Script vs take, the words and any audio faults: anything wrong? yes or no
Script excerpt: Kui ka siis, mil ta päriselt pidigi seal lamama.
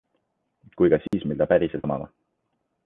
yes